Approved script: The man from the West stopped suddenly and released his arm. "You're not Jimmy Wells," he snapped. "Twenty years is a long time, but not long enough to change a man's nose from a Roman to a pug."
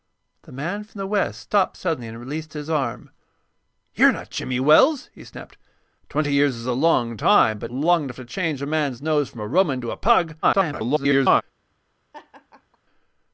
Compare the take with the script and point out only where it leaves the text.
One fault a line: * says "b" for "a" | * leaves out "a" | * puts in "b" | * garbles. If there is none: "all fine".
* leaves out "not"
* garbles